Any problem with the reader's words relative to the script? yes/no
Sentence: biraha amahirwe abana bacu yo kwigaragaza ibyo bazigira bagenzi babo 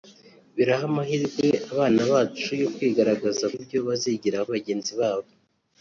no